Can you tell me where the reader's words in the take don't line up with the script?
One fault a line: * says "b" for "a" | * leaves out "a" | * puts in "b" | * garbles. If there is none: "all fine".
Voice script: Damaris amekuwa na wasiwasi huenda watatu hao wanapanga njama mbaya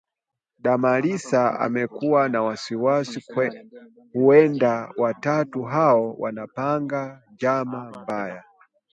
all fine